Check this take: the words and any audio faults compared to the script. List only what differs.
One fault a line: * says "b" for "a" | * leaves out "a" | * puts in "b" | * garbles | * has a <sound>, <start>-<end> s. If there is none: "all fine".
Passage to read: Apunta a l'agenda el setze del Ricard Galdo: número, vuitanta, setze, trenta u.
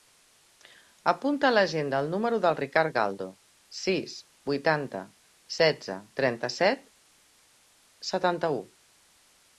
* says "número" for "setze"
* says "sis" for "número"
* puts in "set setanta"